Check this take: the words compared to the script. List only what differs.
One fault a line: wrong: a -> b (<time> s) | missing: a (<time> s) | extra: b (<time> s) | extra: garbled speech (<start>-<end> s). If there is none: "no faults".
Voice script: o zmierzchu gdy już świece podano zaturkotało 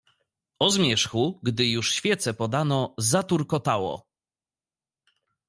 no faults